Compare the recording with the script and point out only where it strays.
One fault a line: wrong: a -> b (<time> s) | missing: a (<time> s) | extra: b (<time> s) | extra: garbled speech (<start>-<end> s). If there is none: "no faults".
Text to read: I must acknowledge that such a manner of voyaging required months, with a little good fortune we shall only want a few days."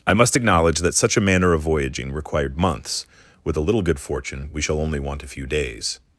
no faults